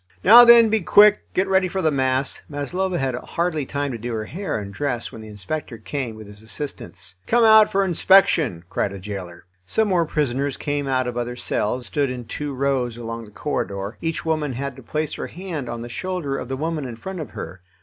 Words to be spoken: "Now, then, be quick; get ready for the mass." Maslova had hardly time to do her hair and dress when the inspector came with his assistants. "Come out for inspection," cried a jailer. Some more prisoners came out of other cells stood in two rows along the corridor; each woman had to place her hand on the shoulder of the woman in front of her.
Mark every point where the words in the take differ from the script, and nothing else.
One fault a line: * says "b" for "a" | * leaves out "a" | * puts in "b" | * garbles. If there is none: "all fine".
all fine